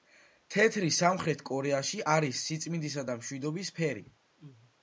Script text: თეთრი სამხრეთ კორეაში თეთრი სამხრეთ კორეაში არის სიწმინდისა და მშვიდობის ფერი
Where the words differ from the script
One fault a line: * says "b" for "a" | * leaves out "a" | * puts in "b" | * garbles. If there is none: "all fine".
* leaves out "თეთრი სამხრეთ კორეაში"